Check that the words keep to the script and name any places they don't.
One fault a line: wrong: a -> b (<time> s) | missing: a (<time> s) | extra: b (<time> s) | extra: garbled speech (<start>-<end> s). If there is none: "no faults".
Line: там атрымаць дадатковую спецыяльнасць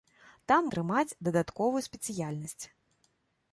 no faults